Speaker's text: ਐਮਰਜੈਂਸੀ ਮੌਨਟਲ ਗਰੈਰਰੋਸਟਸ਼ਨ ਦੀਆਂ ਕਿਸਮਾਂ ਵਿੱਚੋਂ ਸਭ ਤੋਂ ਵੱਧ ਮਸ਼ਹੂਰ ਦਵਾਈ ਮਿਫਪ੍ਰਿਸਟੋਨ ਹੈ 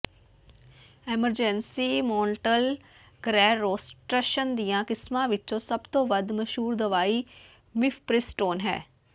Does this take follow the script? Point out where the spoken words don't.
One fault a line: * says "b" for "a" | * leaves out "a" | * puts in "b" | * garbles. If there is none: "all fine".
all fine